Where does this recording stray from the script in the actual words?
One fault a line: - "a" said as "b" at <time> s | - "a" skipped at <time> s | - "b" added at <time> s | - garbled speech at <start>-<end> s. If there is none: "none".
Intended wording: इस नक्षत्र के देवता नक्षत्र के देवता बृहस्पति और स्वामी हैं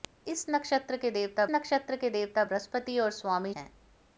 none